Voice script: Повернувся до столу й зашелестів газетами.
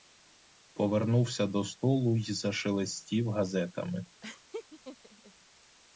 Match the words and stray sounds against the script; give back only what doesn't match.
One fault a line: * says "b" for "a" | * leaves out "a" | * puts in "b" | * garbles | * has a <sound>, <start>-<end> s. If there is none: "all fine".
* has a laugh, 4.2-5.3 s